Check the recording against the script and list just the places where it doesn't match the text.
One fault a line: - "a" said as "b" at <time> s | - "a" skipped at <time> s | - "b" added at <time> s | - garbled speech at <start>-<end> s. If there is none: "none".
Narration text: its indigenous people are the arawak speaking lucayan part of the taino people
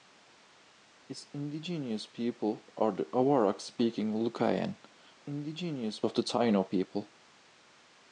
- "part" said as "indigenous" at 5.2 s